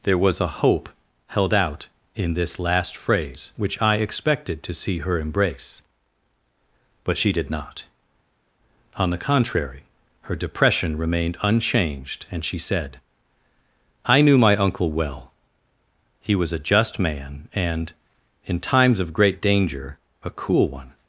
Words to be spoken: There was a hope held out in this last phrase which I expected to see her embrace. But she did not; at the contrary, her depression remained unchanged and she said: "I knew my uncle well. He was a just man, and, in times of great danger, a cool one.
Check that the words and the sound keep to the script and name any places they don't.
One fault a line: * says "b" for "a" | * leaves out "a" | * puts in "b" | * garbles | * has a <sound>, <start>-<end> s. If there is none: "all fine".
* says "on" for "at"